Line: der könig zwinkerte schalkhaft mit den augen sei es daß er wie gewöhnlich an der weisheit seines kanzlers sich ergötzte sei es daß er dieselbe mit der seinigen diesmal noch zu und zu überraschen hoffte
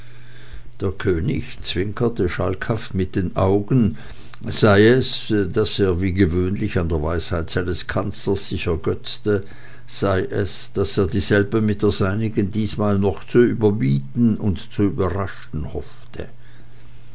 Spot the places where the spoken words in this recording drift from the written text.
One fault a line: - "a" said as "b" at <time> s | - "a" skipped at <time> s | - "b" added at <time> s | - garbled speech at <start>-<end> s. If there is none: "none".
- "überbieten" added at 13.4 s